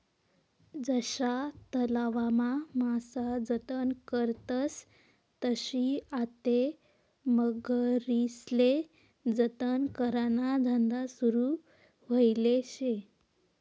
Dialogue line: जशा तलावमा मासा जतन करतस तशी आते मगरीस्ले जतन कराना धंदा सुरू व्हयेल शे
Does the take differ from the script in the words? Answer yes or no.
no